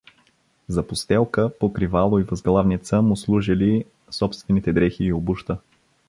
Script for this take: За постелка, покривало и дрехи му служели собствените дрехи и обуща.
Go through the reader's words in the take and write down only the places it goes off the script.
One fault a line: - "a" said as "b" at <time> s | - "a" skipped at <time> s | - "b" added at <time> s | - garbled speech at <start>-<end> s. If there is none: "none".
- "дрехи" said as "възглавница" at 2.2 s